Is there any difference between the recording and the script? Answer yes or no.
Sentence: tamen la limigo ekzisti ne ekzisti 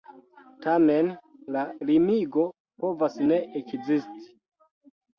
yes